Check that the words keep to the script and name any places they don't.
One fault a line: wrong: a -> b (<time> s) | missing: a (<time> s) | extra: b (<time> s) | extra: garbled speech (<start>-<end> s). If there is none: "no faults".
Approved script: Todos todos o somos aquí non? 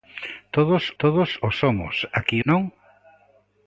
no faults